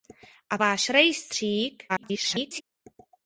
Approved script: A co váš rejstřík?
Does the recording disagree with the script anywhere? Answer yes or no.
yes